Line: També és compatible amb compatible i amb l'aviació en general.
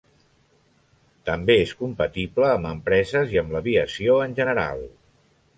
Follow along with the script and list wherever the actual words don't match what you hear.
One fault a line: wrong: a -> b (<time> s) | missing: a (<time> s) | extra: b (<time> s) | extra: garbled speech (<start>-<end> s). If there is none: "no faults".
wrong: compatible -> empreses (2.7 s)